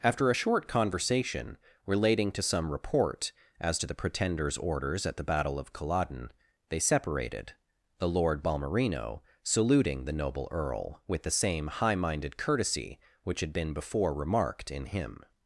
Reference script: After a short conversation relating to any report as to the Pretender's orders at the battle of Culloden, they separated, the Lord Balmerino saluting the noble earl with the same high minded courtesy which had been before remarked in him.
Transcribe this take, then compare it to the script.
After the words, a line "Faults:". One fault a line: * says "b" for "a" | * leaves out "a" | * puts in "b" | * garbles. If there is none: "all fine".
After a short conversation relating to some report as to the Pretender's orders at the battle of Culloden, they separated, the Lord Balmerino saluting the noble earl with the same high minded courtesy which had been before remarked in him.
Faults:
* says "some" for "any"